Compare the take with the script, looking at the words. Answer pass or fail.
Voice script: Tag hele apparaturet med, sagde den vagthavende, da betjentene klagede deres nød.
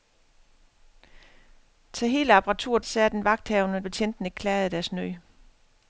fail